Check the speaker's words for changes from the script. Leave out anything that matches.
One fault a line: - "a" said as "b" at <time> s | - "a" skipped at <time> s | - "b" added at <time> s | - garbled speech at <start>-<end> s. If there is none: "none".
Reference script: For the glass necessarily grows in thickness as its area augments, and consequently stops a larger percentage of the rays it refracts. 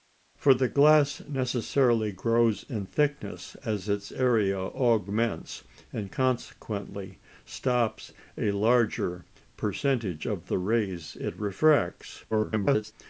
- garbled speech at 12.3-12.9 s